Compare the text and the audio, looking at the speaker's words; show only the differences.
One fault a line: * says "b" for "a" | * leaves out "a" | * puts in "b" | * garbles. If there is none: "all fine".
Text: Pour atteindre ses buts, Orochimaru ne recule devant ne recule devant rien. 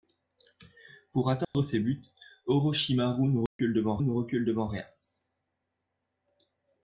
all fine